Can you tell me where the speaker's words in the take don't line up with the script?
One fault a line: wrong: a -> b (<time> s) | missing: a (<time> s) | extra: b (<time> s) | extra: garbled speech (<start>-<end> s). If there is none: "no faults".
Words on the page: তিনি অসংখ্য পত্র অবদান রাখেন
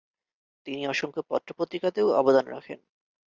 extra: পত্রিকাতেও (1.6 s)